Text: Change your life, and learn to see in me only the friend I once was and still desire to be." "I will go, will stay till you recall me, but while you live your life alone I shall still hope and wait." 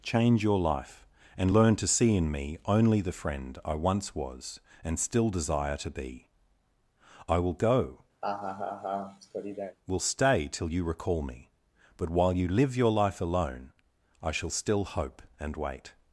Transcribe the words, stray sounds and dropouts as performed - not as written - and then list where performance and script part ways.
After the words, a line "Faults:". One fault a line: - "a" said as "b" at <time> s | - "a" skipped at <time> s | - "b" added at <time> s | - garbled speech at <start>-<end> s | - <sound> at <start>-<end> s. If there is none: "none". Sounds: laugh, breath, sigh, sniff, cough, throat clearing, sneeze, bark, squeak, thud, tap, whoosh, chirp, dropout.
Change your life, and learn to see in me only the friend I once was and still desire to be." "I will go, will stay till you recall me, but while you live your life alone I shall still hope and wait."
Faults:
- laugh at 8.2-9.8 s